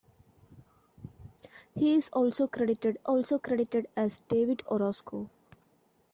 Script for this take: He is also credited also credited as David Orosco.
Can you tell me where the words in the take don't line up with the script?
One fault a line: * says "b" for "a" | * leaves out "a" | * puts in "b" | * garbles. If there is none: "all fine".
all fine